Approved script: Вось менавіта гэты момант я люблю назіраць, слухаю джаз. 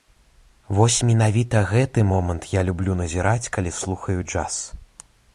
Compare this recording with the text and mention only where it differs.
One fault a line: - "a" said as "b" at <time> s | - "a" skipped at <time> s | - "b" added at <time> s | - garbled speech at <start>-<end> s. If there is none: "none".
- "калі" added at 3.6 s